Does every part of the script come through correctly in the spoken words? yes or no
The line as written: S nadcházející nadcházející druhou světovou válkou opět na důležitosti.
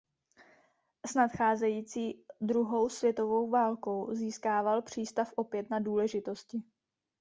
no